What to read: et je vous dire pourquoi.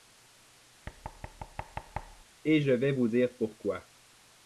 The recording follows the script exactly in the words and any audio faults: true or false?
false